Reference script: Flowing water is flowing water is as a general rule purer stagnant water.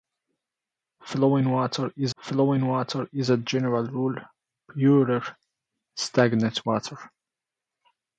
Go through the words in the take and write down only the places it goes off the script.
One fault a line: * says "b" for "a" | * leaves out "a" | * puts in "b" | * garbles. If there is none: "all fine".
all fine